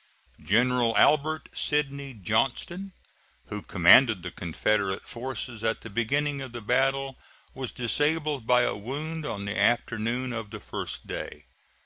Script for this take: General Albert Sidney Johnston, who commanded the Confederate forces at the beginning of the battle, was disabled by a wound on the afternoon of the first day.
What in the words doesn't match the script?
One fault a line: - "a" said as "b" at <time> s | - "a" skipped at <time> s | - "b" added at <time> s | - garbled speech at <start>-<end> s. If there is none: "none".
none